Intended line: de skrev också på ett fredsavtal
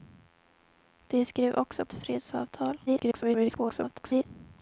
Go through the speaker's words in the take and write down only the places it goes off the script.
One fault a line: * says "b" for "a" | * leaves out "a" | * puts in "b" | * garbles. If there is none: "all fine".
* leaves out "på"
* garbles